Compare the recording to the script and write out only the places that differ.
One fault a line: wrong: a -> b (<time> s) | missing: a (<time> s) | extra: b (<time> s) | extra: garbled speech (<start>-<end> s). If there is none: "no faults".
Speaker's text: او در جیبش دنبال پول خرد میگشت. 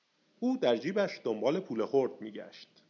no faults